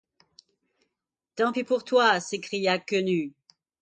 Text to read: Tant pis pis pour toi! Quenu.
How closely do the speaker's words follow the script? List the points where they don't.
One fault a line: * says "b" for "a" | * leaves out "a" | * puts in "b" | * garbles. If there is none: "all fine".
* leaves out "pis"
* puts in "s'écria"